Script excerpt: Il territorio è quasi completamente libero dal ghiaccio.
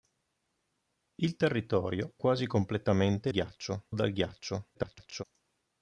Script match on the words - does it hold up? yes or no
no